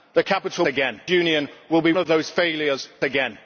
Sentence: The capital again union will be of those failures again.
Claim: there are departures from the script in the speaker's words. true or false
false